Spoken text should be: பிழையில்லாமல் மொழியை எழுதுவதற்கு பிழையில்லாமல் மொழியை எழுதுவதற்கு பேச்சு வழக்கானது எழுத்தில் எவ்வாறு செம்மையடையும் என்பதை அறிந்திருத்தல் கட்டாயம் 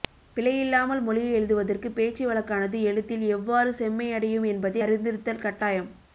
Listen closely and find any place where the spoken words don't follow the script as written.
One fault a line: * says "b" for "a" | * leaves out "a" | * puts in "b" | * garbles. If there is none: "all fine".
* leaves out "பிழையில்லாமல் மொழியை எழுதுவதற்கு"